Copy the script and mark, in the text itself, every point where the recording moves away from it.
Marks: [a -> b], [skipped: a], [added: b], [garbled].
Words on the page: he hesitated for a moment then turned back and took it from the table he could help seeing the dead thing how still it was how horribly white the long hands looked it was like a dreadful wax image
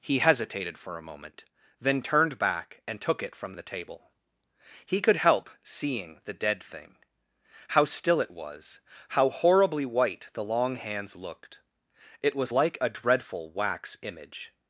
he hesitated for a moment then turned back and took it from the table he could help seeing the dead thing how still it was how horribly white the long hands looked it was like a dreadful wax image